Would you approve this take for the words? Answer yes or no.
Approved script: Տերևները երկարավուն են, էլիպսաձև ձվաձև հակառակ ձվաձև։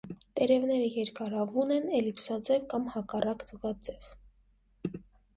no